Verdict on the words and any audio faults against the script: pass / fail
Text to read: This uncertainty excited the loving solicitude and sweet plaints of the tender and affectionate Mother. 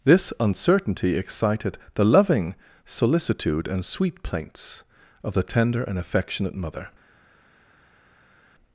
pass